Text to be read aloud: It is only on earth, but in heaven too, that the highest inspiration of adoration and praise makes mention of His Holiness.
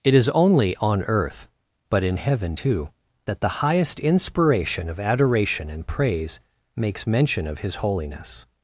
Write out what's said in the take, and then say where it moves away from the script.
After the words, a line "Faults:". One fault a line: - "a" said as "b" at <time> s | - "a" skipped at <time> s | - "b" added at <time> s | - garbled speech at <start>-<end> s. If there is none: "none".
It is only on earth, but in heaven too, that the highest inspiration of adoration and praise makes mention of His Holiness.
Faults:
none